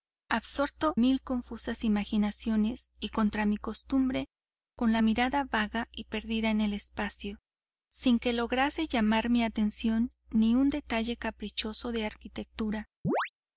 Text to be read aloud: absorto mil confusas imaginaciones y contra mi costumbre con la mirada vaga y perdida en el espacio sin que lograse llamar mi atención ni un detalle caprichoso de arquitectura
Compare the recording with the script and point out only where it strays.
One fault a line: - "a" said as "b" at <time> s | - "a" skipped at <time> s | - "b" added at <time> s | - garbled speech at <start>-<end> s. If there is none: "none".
none